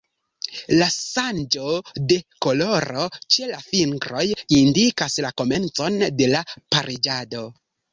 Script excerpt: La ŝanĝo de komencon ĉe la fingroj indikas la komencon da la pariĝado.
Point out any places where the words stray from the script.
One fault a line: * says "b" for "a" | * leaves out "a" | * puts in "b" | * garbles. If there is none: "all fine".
* says "koloro" for "komencon"
* says "de" for "da"